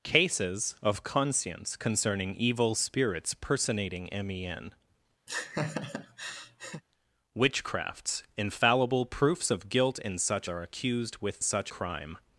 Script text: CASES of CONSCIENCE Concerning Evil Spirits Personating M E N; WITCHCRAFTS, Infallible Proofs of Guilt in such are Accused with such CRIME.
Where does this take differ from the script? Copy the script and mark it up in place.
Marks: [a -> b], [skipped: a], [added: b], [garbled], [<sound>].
CASES of CONSCIENCE Concerning Evil Spirits Personating M E N; [laugh] WITCHCRAFTS, Infallible Proofs of Guilt in such are Accused with such CRIME.